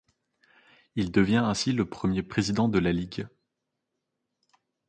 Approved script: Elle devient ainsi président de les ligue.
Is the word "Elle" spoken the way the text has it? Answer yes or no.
no